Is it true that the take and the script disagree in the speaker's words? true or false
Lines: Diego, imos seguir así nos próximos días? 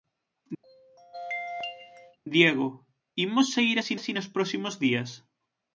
true